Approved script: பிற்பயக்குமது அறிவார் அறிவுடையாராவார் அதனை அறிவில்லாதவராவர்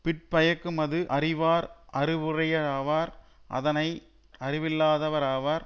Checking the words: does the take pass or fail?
pass